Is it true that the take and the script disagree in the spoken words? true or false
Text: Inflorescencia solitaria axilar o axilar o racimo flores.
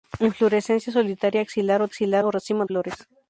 false